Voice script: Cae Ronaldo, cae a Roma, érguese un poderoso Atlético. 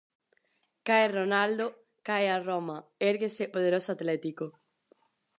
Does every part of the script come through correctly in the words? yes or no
no